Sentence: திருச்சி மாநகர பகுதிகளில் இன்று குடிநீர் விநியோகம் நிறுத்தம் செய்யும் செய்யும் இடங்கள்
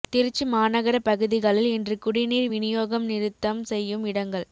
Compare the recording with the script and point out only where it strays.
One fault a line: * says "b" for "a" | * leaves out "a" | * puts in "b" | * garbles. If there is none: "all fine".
* leaves out "செய்யும்"